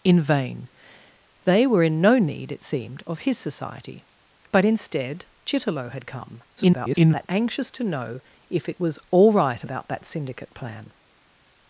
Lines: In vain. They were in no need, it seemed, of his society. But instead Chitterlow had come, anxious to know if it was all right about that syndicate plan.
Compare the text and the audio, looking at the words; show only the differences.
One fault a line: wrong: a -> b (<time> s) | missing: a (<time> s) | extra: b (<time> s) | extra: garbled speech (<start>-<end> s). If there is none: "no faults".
extra: garbled speech (6.6-7.3 s)